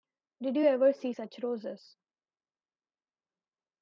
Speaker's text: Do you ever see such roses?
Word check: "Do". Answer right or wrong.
wrong